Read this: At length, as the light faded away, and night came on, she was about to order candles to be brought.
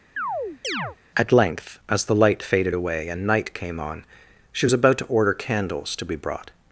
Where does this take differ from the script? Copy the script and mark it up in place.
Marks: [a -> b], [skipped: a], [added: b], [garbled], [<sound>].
[chirp] At length, as the light faded away, and night came on, she was about to order candles to be brought.